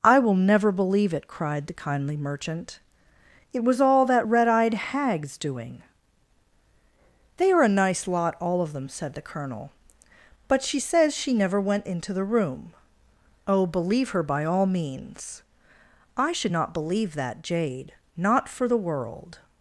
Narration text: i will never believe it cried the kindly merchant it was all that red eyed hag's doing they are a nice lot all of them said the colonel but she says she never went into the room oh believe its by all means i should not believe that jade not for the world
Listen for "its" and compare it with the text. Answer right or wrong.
wrong